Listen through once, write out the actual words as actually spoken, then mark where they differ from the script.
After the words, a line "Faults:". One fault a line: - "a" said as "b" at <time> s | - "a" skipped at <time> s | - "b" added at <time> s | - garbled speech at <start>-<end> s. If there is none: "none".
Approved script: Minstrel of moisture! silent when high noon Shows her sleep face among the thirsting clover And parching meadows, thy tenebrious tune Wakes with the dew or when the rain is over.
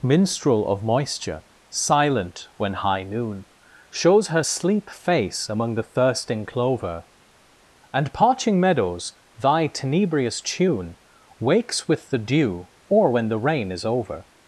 Minstrel of moisture! silent when high noon Shows her sleep face among the thirsting clover And parching meadows, thy tenebrious tune Wakes with the dew or when the rain is over.
Faults:
none